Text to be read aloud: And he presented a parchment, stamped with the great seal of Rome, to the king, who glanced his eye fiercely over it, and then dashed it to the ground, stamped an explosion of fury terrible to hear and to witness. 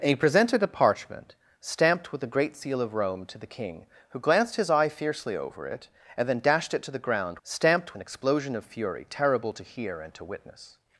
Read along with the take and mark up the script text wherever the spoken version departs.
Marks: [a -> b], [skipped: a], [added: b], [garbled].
And he presented a parchment, stamped with the great seal of Rome, to the king, who glanced his eye fiercely over it, and then dashed it to the ground, stamped an explosion of fury terrible to hear and to witness.